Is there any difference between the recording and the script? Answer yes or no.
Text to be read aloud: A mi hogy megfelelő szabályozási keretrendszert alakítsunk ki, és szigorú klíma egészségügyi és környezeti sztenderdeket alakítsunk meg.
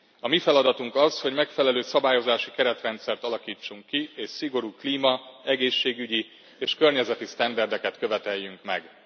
yes